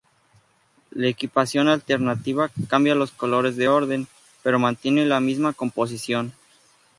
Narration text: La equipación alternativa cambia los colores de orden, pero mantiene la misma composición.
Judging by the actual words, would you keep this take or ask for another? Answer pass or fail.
pass